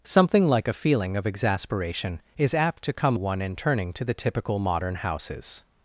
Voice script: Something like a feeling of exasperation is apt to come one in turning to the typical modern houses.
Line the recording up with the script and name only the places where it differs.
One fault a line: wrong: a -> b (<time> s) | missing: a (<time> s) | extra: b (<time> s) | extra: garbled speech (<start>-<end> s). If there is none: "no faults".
no faults